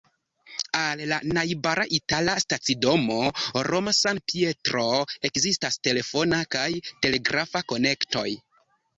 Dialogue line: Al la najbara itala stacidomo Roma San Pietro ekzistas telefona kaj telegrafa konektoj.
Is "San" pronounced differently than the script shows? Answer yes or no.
no